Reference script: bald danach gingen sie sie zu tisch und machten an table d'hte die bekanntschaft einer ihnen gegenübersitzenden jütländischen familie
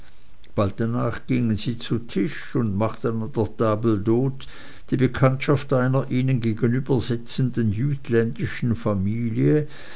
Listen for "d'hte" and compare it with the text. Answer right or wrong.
right